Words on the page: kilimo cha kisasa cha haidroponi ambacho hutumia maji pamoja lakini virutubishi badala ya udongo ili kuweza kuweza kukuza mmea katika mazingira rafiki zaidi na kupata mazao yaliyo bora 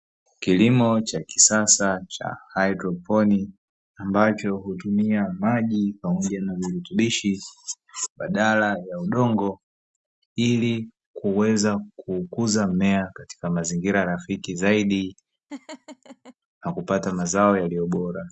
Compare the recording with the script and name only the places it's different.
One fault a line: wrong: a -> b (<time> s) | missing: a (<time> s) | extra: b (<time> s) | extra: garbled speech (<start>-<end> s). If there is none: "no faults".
wrong: lakini -> na (6.4 s)
missing: kuweza (11.8 s)